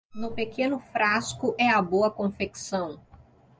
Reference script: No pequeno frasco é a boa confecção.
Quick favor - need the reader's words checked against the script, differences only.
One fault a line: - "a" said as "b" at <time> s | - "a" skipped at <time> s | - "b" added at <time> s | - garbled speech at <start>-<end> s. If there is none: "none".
none